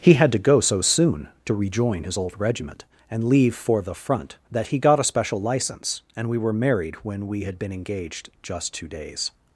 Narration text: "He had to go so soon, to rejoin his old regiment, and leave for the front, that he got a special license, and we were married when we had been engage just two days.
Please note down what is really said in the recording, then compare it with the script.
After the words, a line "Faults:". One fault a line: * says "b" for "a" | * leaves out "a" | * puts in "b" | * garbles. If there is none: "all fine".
"He had to go so soon, to rejoin his old regiment, and leave for the front, that he got a special license, and we were married when we had been engaged just two days.
Faults:
* says "engaged" for "engage"